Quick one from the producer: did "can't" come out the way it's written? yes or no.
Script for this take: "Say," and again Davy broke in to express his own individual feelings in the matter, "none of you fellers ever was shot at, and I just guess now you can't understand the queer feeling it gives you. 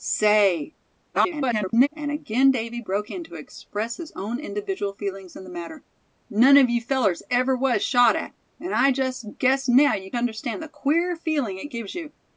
no